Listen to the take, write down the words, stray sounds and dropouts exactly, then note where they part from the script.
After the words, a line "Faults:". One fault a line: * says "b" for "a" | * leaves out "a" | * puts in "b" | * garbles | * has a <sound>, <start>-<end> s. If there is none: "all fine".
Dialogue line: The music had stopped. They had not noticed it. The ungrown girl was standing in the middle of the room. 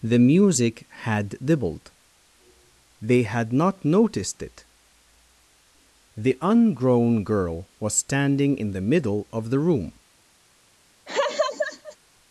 The music had dibbled. They had not noticed it. The ungrown girl was standing in the middle of the room.
Faults:
* says "dibbled" for "stopped"
* has a laugh, 11.1-12.0 s